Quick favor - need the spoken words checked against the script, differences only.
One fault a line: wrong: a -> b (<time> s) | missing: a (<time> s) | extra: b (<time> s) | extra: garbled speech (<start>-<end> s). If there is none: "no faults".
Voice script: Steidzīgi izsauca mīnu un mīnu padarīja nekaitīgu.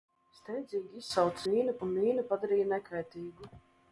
no faults